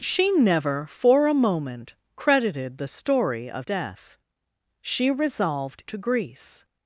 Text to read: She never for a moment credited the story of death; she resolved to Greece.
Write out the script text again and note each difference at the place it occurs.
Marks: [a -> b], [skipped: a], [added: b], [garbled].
She never for a moment credited the story of death; she resolved to Greece.